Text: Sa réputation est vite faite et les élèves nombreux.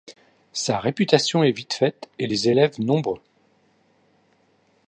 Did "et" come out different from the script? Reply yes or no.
no